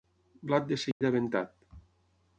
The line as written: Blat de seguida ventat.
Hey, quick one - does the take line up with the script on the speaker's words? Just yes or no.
yes